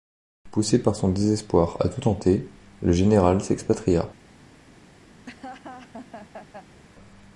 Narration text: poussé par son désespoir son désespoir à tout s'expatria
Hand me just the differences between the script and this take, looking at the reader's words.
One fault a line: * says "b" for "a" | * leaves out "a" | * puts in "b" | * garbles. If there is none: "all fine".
* says "à tout tenter le général" for "son désespoir à tout"